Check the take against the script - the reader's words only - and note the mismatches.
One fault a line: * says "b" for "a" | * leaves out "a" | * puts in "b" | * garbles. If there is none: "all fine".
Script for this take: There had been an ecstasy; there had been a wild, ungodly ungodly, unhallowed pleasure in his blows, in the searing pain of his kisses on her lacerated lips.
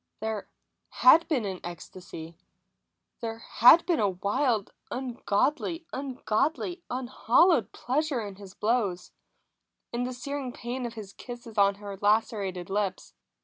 all fine